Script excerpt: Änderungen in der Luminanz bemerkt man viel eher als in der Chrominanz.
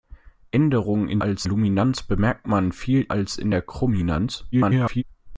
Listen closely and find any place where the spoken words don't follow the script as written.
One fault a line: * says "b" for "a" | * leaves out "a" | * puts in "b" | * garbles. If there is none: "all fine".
* says "als" for "der"
* leaves out "eher"
* garbles